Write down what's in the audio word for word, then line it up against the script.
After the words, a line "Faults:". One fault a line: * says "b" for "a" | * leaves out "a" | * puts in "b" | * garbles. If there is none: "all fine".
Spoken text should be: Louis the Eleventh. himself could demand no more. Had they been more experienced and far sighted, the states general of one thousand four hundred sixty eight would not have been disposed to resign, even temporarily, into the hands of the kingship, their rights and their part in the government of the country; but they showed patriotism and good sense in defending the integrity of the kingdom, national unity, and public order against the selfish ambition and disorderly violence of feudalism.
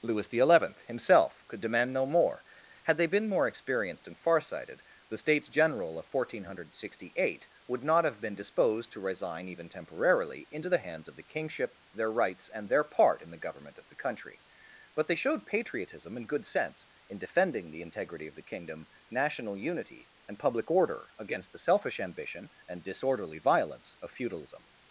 Louis the Eleventh. himself could demand no more. Had they been more experienced and far sighted, the states general of one thousand four hundred sixty eight would not have been disposed to resign, even temporarily, into the hands of the kingship, their rights and their part in the government of the country; but they showed patriotism and good sense in defending the integrity of the kingdom, national unity, and public order against the selfish ambition and disorderly violence of feudalism.
Faults:
all fine